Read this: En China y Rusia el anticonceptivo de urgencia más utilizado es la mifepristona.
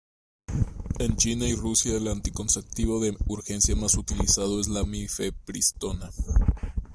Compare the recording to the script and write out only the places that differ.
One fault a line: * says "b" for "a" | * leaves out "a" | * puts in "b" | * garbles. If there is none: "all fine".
all fine